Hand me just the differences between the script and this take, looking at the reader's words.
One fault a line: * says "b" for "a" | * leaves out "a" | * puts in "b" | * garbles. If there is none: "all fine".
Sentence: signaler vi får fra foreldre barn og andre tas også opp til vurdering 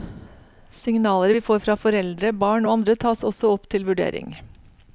all fine